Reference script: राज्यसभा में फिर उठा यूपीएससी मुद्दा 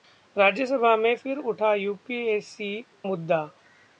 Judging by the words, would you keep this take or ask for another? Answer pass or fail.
pass